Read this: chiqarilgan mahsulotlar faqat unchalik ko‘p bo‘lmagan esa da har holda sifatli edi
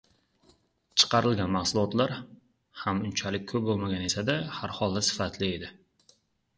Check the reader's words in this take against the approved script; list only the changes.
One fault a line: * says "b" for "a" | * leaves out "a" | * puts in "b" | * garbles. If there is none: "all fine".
* says "ham" for "faqat"